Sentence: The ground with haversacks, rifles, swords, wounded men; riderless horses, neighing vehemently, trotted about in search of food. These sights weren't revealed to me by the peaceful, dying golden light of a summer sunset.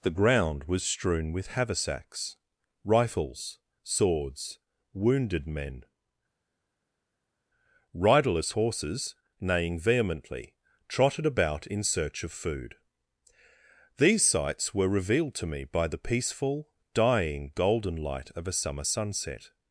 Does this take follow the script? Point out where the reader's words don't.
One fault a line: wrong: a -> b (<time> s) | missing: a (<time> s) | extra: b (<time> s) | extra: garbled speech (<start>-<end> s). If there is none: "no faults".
extra: was strewn (0.6 s)
wrong: weren't -> were (14.7 s)